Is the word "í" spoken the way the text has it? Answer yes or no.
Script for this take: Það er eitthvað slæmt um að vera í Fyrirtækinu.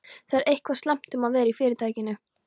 yes